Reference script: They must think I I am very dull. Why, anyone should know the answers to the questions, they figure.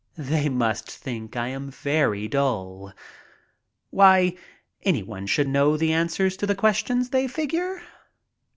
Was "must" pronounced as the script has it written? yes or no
yes